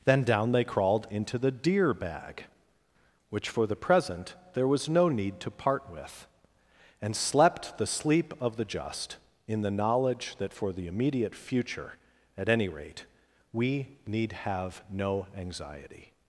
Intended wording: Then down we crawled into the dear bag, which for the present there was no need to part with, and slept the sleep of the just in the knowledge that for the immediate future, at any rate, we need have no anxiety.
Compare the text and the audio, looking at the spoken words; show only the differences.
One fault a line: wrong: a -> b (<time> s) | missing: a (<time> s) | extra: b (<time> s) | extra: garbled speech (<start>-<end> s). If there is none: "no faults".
wrong: we -> they (0.5 s)